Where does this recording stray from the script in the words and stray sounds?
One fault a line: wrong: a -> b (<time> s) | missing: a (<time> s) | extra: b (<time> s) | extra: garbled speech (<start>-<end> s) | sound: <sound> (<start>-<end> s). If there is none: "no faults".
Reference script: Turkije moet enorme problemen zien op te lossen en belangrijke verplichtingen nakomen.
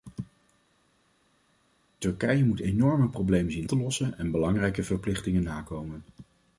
missing: op (3.7 s)